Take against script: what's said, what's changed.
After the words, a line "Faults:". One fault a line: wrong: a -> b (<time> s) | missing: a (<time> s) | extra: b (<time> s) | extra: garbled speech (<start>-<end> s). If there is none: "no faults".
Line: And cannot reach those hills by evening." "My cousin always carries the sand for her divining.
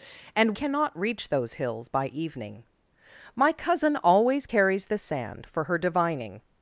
And cannot reach those hills by evening." "My cousin always carries the sand for her divining.
Faults:
no faults